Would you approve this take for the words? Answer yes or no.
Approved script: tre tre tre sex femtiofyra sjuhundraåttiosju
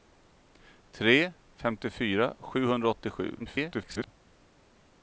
no